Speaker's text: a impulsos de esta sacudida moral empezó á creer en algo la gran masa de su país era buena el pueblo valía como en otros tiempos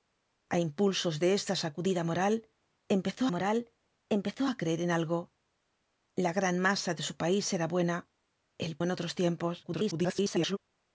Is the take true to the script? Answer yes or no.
no